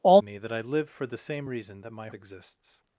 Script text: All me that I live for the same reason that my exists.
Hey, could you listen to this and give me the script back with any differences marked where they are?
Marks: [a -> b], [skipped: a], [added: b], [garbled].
All me that I live for the same reason that my exists.